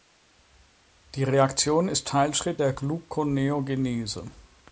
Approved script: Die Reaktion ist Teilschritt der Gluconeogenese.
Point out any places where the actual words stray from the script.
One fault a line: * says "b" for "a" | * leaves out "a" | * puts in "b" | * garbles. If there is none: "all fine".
all fine